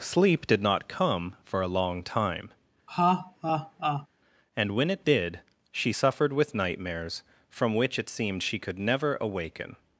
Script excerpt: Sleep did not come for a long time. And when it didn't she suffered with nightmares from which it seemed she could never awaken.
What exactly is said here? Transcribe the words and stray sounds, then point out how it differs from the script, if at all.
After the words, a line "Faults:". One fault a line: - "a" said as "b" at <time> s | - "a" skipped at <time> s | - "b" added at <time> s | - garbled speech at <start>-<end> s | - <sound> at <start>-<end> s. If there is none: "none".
Sleep did not come for a long time. And when it did she suffered with nightmares from which it seemed she could never awaken.
Faults:
- laugh at 2.9-4.1 s
- "didn't" said as "did" at 5.0 s